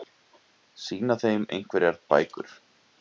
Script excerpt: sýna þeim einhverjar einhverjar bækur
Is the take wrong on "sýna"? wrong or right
right